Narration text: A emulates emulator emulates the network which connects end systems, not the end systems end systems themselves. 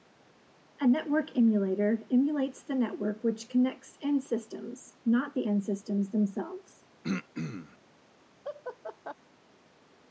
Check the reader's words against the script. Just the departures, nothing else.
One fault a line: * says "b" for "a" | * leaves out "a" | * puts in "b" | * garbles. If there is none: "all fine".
* says "network" for "emulates"
* leaves out "end systems"